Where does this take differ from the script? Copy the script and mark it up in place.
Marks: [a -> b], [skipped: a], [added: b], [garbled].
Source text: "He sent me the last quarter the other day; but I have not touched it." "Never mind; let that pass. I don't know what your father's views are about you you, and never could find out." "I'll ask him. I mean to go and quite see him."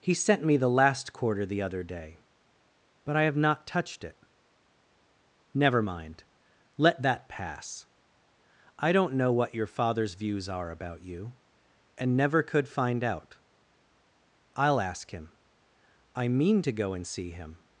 "He sent me the last quarter the other day; but I have not touched it." "Never mind; let that pass. I don't know what your father's views are about you [skipped: you,] and never could find out." "I'll ask him. I mean to go and [skipped: quite] see him."